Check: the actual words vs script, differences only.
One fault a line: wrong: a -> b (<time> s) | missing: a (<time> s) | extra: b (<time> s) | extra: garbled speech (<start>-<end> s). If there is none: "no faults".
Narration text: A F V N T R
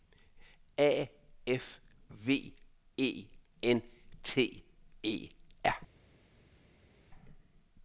extra: E (3.0 s)
extra: E (5.0 s)